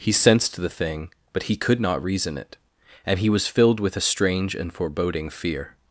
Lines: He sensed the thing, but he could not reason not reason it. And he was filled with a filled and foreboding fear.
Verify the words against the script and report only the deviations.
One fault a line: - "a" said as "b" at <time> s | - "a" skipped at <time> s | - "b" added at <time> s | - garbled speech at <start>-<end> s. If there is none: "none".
- "not reason" skipped at 2.4 s
- "filled" said as "strange" at 4.0 s